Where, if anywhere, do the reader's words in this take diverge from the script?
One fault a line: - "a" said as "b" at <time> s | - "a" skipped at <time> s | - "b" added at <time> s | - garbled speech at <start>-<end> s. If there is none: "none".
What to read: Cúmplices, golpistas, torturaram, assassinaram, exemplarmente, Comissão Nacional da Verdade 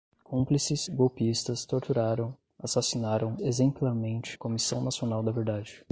none